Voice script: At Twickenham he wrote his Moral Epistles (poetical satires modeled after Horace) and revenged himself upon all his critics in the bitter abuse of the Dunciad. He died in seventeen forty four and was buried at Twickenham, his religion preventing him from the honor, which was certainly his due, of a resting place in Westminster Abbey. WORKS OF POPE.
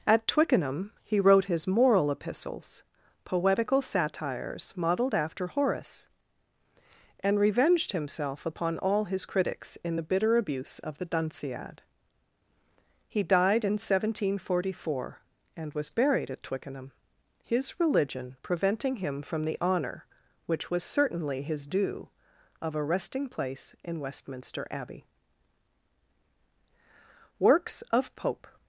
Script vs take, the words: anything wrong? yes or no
no